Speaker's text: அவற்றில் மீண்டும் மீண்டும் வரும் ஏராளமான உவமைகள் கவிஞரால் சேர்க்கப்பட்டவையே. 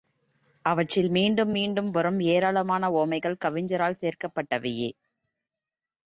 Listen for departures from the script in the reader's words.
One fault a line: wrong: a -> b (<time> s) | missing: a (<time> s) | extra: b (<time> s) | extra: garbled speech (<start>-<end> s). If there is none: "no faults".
no faults